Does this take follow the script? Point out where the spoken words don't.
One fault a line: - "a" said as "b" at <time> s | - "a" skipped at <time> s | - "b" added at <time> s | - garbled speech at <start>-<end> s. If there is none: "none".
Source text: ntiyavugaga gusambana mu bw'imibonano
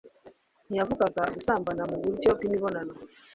- "buryo" added at 2.0 s